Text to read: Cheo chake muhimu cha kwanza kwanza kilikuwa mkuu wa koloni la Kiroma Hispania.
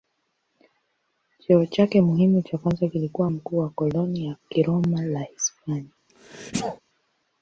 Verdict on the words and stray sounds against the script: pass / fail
fail